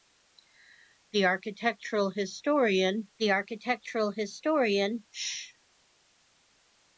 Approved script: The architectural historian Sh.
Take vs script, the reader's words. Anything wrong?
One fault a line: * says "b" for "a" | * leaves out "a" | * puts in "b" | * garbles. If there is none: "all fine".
* puts in "the architectural historian"